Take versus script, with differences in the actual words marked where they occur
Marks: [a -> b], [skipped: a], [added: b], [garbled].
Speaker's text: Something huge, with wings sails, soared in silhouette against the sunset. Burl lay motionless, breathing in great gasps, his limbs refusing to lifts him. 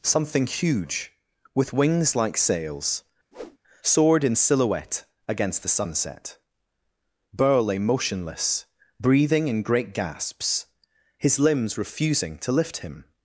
Something huge, with wings [added: like] sails, soared in silhouette against the sunset. Burl lay motionless, breathing in great gasps, his limbs refusing to [lifts -> lift] him.